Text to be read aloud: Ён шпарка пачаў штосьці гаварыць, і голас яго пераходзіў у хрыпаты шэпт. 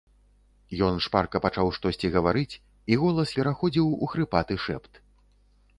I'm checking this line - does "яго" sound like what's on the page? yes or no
no